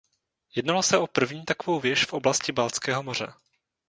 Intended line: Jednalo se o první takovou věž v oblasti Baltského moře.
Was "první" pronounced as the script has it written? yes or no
yes